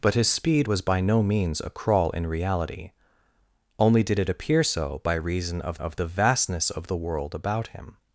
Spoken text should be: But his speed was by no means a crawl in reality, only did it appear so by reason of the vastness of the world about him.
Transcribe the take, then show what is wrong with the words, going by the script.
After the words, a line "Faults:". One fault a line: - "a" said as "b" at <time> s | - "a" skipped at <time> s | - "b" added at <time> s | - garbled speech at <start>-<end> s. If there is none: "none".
But his speed was by no means a crawl in reality, only did it appear so by reason of of the vastness of the world about him.
Faults:
- "of" added at 5.8 s